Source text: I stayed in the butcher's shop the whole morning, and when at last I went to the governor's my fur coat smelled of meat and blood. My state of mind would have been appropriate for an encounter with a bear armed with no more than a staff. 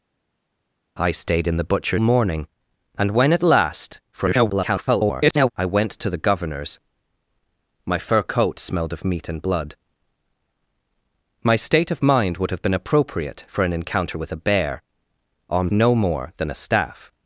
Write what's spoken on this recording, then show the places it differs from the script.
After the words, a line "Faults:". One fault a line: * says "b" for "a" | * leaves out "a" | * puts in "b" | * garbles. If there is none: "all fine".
I stayed in the butcher's morning, and when at last [garbled] I went to the governor's my fur coat smelled of meat and blood. My state of mind would have been appropriate for an encounter with a bear armed no more than a staff.
Faults:
* leaves out "shop the whole"
* garbles
* leaves out "with"